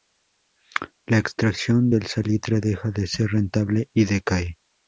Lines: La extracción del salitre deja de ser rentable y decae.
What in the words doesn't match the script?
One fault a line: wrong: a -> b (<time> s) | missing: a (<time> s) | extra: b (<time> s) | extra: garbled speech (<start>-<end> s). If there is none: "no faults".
no faults